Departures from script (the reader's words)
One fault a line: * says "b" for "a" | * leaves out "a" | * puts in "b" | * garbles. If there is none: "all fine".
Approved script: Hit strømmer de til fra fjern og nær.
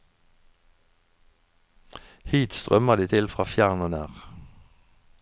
all fine